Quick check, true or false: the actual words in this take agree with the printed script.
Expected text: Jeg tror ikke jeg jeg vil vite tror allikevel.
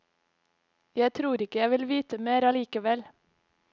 false